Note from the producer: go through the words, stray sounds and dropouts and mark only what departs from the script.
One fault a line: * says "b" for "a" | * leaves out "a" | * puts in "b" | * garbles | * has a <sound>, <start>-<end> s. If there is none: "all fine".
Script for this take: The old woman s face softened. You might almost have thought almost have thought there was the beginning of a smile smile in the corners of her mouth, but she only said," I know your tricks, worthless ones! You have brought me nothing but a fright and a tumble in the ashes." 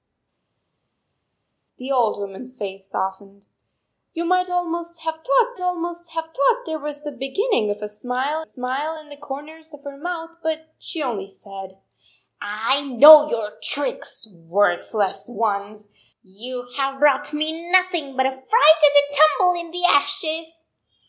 all fine